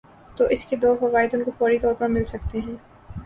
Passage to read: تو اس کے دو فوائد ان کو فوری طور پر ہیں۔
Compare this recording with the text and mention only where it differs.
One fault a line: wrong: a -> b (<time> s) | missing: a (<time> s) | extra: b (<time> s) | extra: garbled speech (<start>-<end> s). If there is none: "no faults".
extra: مل سکتے (2.1 s)